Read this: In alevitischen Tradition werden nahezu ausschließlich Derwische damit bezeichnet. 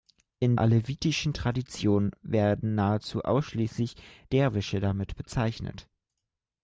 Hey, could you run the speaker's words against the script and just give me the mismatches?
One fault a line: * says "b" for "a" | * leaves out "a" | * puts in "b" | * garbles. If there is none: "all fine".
all fine